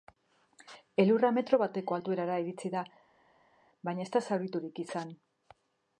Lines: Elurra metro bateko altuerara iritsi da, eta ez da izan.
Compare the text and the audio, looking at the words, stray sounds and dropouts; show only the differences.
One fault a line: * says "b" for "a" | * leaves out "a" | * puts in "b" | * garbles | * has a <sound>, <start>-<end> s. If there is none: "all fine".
* says "baina" for "eta"
* puts in "zauriturik"